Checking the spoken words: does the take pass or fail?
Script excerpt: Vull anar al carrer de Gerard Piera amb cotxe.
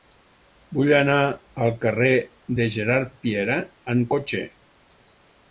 pass